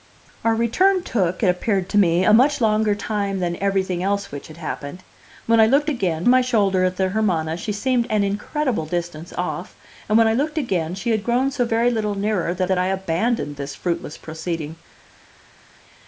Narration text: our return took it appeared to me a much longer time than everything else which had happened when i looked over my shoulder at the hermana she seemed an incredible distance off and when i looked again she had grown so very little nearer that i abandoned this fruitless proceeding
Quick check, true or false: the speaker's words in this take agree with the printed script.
false